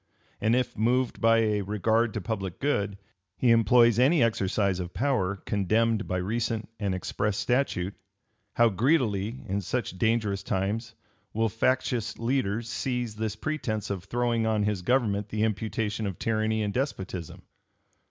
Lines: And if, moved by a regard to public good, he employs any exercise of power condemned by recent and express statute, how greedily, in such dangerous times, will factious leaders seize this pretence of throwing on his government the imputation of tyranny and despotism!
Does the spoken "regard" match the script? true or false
true